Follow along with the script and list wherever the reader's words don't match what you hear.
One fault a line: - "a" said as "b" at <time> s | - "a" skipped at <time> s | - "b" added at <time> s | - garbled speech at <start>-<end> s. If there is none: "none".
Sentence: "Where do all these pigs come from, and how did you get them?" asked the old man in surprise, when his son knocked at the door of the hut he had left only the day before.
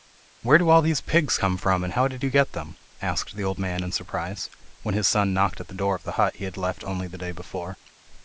none